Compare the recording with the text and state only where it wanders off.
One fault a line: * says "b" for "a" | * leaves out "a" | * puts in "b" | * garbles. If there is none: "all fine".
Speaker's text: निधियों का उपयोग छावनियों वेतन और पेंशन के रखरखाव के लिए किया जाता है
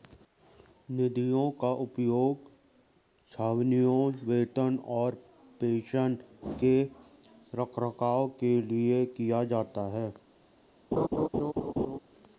all fine